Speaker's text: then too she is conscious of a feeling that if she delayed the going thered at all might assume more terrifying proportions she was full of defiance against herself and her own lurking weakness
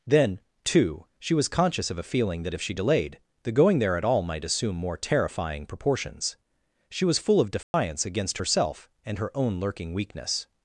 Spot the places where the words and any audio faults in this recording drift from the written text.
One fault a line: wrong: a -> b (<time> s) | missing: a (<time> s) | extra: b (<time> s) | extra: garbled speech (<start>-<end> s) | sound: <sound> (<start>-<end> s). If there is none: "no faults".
wrong: is -> was (1.3 s)
wrong: thered -> there (3.8 s)
sound: dropout (7.6-7.7 s)